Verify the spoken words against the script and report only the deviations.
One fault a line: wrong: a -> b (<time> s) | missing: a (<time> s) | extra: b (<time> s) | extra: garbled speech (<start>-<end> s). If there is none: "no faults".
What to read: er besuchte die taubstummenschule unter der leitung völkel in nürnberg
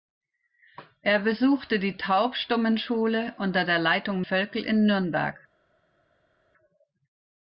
no faults